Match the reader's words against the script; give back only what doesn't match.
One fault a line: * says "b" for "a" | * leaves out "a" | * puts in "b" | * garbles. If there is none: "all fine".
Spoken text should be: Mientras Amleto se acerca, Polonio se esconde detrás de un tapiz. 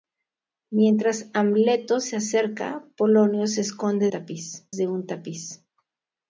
* says "tapiz" for "detrás"